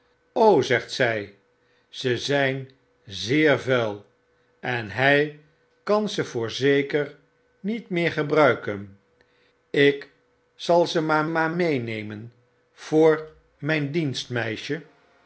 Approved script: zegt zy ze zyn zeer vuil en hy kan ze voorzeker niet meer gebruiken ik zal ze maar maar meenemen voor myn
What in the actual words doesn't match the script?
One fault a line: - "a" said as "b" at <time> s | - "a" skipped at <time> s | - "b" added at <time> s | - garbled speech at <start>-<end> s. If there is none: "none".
none